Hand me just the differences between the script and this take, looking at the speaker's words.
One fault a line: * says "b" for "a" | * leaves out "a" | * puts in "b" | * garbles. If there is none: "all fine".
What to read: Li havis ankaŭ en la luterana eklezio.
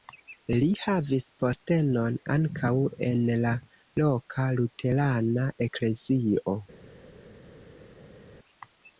* puts in "postenon"
* puts in "loka"